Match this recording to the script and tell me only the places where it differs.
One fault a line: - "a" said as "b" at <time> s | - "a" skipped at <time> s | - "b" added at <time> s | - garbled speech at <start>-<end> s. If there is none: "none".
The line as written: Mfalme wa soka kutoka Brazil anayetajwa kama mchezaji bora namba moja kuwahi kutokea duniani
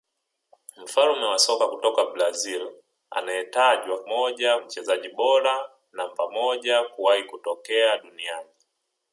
- "kama" said as "moja" at 4.0 s